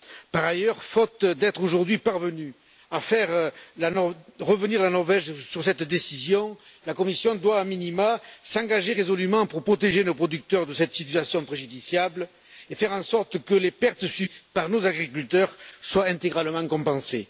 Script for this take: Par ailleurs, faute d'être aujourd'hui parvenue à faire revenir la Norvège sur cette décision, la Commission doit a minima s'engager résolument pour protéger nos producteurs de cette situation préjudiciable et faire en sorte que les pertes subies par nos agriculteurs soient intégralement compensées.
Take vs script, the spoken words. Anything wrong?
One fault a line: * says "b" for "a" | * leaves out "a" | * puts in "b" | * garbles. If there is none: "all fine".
all fine